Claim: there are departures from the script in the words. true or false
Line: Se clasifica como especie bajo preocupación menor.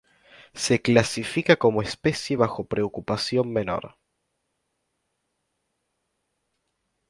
false